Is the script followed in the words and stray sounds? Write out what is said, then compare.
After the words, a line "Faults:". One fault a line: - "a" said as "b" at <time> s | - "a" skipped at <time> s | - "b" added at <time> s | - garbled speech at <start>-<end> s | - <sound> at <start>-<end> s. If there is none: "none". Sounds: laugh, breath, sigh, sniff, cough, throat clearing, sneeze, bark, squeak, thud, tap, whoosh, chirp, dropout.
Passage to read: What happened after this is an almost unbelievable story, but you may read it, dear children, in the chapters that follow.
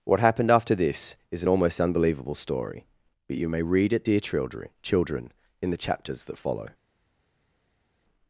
What happened after this is an almost unbelievable story, but you may read it, dear children children, in the chapters that follow.
Faults:
- "children" added at 4.8 s